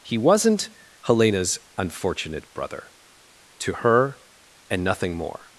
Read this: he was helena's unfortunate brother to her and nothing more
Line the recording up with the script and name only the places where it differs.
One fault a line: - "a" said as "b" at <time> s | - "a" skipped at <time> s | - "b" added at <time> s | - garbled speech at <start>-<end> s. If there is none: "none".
- "was" said as "wasn't" at 0.2 s